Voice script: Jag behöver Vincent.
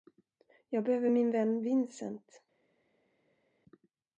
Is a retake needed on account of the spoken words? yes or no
yes